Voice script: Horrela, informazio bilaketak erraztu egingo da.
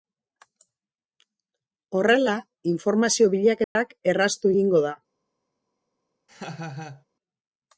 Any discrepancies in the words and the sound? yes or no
yes